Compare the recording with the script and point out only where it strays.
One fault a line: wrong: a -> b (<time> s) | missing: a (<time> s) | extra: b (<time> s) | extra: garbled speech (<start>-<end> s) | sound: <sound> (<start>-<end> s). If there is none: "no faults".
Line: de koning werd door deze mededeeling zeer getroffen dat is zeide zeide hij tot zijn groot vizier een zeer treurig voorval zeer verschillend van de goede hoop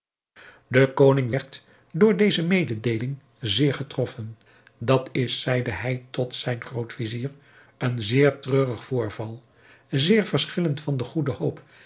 missing: zeide (5.7 s)